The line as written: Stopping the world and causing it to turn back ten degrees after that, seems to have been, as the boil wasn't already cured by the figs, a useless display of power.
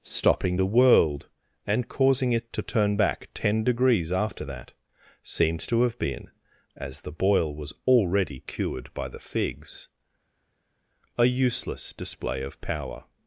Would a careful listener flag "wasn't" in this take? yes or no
yes